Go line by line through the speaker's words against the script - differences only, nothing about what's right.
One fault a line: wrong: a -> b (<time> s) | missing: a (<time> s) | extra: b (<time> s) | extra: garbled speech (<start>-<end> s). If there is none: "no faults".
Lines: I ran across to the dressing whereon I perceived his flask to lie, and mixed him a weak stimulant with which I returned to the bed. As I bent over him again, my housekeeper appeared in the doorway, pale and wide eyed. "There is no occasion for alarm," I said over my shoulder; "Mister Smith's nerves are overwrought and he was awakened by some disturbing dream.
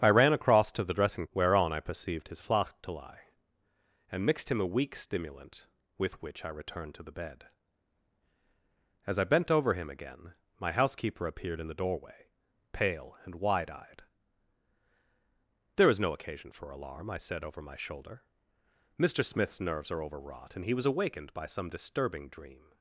no faults